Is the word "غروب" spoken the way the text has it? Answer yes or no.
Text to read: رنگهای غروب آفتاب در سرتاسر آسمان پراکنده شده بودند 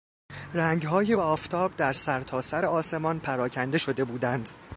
no